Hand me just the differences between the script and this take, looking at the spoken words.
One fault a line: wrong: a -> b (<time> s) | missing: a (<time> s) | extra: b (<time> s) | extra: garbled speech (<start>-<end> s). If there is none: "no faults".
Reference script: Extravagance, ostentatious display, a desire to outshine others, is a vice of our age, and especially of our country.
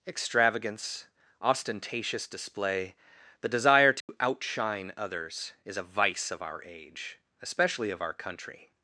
wrong: a -> the (3.4 s)
missing: and (7.2 s)